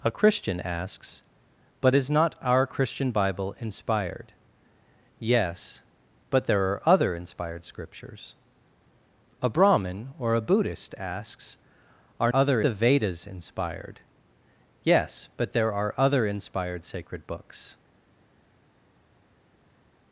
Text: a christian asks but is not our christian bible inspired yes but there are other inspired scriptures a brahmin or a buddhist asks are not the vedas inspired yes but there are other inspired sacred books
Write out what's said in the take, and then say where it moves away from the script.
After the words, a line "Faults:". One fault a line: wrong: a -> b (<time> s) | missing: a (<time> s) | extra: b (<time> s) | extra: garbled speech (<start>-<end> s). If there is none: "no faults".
a christian asks but is not our christian bible inspired yes but there are other inspired scriptures a brahmin or a buddhist asks are other the vedas inspired yes but there are other inspired sacred books
Faults:
wrong: not -> other (12.3 s)